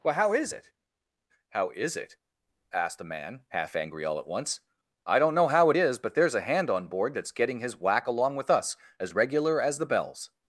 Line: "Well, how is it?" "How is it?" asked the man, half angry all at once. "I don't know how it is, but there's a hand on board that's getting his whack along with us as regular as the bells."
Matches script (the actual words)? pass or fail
pass